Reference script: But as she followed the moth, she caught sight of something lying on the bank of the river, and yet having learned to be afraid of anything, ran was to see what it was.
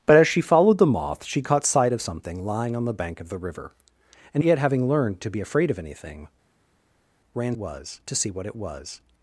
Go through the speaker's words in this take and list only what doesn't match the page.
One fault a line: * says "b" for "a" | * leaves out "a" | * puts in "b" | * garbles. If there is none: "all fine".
all fine